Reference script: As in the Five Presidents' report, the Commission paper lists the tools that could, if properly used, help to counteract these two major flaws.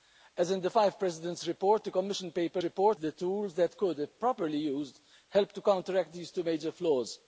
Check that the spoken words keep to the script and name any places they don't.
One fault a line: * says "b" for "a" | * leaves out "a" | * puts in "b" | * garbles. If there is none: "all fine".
* says "report" for "lists"